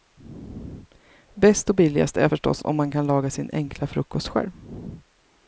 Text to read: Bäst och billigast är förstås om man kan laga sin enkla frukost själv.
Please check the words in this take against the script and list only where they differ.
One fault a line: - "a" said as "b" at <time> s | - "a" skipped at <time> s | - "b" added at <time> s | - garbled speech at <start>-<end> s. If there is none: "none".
none